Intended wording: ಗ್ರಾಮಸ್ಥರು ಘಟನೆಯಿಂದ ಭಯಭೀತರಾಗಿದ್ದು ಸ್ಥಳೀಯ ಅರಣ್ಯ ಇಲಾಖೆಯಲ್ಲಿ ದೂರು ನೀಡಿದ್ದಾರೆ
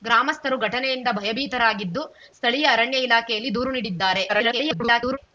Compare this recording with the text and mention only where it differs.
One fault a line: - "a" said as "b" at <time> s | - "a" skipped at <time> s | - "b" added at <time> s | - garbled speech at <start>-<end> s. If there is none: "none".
- garbled speech at 4.3-5.2 s